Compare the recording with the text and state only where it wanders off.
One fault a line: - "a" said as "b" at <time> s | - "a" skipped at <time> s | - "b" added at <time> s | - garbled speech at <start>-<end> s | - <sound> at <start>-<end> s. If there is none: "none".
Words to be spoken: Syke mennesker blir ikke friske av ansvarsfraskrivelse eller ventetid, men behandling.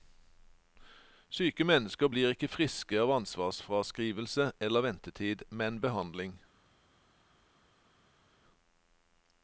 none